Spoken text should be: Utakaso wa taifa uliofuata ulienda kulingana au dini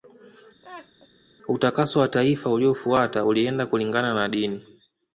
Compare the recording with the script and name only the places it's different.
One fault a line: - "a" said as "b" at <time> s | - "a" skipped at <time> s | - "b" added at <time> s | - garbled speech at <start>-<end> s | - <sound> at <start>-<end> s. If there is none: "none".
- laugh at 0.6-1.1 s
- "au" said as "na" at 4.1 s